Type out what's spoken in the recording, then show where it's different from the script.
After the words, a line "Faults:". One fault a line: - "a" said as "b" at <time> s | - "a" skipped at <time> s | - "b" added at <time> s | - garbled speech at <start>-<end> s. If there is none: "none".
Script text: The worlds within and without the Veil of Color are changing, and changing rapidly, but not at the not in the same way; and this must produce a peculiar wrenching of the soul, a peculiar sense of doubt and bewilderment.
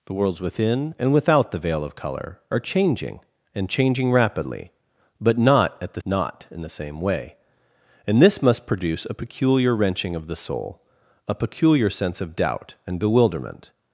The worlds within and without the Veil of Color are changing, and changing rapidly, but not at the not in the same way; and this must produce a peculiar wrenching of the soul, a peculiar sense of doubt and bewilderment.
Faults:
none